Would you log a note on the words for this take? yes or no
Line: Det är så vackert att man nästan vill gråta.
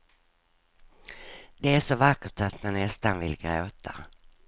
no